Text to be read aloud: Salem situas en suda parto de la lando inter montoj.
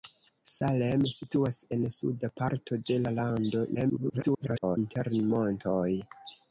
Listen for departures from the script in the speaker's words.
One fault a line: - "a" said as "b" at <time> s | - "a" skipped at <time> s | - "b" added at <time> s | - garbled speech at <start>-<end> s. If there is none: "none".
- garbled speech at 3.7-4.8 s